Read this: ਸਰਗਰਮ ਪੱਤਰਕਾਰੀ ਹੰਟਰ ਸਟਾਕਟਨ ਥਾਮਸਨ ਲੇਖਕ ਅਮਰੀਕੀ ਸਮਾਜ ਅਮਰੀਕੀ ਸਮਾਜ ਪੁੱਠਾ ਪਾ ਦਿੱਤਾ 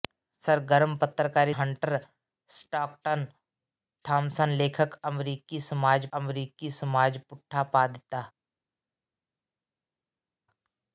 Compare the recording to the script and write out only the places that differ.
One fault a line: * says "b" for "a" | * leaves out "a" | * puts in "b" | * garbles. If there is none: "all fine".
all fine